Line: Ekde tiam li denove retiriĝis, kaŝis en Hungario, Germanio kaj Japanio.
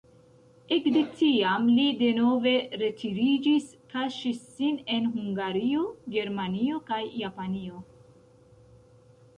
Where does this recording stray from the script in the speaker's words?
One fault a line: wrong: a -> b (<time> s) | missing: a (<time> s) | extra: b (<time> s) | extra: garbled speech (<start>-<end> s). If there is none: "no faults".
extra: sin (4.6 s)